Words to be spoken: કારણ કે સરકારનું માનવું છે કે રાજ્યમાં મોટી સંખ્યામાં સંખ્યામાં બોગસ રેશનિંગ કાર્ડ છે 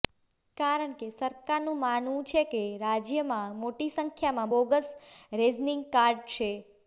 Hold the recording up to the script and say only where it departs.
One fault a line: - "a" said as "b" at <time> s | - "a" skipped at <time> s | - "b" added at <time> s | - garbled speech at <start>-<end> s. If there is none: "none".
- "સંખ્યામાં" skipped at 4.5 s